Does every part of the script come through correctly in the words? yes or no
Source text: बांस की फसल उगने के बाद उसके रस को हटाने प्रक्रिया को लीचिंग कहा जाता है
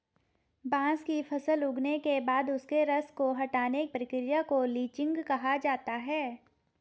yes